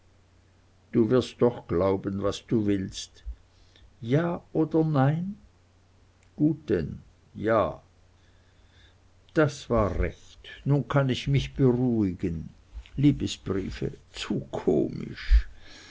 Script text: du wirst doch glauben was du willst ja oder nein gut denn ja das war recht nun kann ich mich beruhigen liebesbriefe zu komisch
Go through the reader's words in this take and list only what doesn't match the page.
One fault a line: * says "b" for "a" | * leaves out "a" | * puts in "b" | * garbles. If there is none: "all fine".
all fine